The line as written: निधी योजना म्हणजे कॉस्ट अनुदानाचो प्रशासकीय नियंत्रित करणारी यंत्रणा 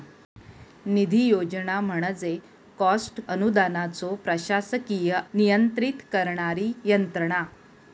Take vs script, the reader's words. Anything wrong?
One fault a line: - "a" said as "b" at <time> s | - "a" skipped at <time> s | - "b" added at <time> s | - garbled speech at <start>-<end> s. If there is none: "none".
none